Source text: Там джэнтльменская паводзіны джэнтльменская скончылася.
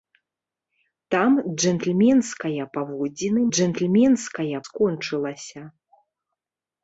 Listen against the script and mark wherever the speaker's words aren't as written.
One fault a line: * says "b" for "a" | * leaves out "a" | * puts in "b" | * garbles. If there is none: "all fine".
all fine